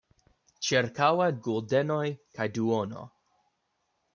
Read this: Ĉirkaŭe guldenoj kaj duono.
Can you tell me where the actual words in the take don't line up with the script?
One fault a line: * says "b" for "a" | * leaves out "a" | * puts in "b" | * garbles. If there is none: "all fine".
all fine